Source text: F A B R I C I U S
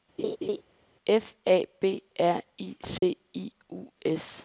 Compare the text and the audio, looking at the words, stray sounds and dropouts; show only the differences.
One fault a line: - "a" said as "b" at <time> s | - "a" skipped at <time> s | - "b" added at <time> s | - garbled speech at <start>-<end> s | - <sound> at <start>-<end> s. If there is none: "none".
- laugh at 0.2-0.6 s
- dropout at 3.0-3.0 s